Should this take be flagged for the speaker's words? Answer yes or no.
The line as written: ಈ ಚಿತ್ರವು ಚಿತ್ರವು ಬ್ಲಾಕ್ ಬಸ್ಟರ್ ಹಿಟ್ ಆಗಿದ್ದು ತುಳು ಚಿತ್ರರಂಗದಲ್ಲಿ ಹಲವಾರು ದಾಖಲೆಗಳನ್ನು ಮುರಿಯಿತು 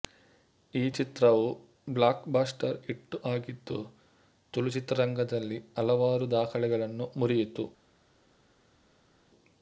yes